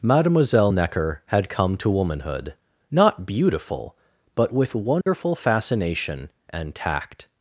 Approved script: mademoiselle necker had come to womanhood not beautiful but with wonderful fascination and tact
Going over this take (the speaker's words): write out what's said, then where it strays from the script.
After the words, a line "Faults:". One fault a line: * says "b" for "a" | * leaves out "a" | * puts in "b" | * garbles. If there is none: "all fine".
mademoiselle necker had come to womanhood not beautiful but with wonderful fascination and tact
Faults:
all fine